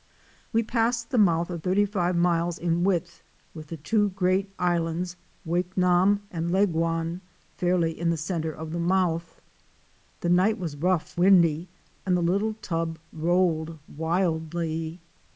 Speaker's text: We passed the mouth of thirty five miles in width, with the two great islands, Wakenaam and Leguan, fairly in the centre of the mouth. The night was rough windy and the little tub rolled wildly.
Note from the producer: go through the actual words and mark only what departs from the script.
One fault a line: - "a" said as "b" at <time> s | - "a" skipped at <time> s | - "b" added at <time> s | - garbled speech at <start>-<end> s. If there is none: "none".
none